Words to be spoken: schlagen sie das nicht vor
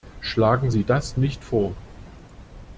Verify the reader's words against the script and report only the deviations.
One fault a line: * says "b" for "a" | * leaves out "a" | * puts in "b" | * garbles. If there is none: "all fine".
all fine